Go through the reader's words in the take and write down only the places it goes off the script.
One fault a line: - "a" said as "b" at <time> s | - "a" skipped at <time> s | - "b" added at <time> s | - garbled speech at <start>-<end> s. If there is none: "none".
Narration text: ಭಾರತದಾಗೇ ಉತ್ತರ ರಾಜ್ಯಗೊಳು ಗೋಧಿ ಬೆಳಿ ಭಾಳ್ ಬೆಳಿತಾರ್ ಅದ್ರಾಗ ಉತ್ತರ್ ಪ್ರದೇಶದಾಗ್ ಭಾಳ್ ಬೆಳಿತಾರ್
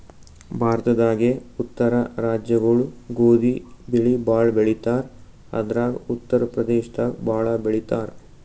none